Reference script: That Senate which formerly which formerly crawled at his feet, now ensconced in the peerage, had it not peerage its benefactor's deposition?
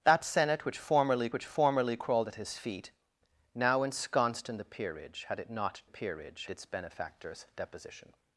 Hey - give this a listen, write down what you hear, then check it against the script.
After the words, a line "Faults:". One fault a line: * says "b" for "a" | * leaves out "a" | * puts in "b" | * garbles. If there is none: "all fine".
That Senate which formerly which formerly crawled at his feet, now ensconced in the peerage, had it not peerage its benefactor's deposition?
Faults:
all fine